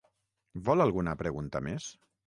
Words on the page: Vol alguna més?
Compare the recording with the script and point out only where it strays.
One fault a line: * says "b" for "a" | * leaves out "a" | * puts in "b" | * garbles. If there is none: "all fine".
* puts in "pregunta"